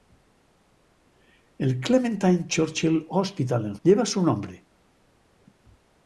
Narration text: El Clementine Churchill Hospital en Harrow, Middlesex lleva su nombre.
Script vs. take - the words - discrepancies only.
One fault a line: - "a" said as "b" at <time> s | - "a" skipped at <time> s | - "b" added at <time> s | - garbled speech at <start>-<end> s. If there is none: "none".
- "Harrow Middlesex" skipped at 3.8 s